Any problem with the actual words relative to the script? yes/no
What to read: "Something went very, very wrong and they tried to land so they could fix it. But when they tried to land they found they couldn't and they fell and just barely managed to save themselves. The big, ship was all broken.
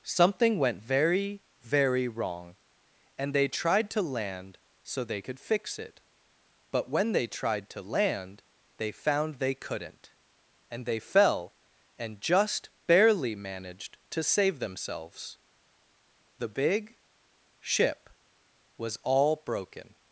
no